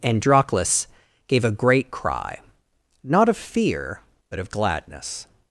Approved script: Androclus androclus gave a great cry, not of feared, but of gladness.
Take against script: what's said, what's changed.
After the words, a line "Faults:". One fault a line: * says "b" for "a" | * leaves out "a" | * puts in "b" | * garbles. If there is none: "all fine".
Androclus gave a great cry, not of fear, but of gladness.
Faults:
* leaves out "androclus"
* says "fear" for "feared"